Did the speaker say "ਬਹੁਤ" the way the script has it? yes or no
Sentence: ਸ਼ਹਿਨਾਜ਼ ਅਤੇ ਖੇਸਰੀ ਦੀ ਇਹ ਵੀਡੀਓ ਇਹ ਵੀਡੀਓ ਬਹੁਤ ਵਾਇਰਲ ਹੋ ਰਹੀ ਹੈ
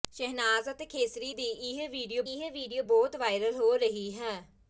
yes